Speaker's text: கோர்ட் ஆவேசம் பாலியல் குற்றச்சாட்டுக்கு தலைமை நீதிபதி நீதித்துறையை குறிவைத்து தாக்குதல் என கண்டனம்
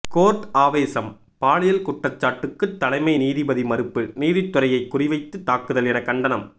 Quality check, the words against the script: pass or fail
fail